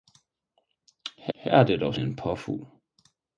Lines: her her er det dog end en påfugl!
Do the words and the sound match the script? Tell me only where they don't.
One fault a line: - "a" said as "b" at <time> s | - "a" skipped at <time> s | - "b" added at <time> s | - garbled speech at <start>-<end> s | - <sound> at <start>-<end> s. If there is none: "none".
none